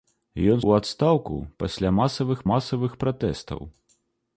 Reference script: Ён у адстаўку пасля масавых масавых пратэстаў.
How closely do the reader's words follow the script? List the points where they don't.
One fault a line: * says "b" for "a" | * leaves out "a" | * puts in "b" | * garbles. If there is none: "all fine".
all fine